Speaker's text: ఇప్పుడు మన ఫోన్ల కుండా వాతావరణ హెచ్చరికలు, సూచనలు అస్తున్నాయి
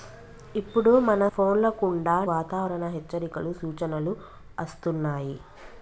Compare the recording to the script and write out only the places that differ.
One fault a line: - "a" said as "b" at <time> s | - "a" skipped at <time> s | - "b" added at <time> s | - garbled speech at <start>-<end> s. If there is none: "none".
none